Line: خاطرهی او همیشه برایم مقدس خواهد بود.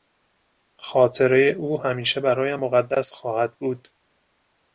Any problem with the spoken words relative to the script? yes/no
no